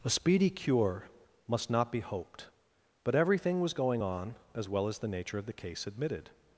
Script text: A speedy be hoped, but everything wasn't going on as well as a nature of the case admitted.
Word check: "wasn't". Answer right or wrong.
wrong